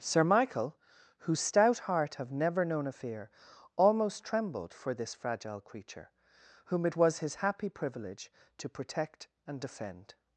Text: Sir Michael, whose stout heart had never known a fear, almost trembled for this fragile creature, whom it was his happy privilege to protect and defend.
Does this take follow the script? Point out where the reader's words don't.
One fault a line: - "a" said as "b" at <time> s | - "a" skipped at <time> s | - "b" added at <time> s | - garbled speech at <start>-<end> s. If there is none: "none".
- "had" said as "have" at 2.1 s